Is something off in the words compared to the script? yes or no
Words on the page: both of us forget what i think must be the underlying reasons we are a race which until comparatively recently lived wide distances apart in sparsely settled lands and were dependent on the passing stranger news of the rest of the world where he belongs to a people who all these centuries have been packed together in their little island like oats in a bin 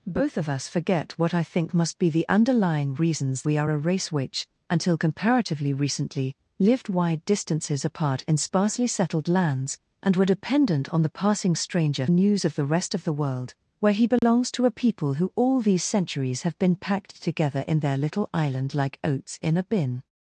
no